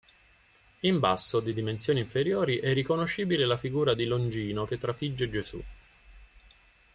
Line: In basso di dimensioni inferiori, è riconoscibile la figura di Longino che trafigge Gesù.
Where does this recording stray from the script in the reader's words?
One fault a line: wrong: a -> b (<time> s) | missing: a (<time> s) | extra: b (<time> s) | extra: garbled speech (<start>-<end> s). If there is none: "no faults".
no faults